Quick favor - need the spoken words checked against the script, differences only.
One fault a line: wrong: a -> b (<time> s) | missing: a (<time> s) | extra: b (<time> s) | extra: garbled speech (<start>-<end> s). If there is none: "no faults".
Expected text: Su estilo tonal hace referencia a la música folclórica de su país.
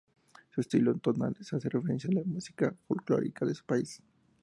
no faults